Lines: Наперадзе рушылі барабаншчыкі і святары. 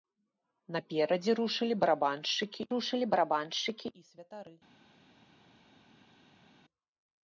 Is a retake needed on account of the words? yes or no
yes